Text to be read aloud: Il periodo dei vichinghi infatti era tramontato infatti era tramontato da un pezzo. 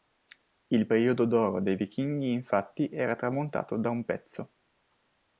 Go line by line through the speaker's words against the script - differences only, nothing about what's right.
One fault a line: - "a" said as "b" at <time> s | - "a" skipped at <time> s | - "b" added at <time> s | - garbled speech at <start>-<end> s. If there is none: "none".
- "d'oro" added at 1.2 s
- "infatti era tramontato" skipped at 3.7 s